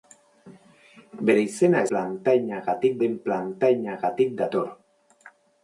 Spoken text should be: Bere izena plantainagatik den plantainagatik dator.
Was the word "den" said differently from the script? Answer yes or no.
no